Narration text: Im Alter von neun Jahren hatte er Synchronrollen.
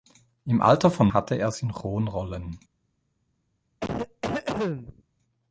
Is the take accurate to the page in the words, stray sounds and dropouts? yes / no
no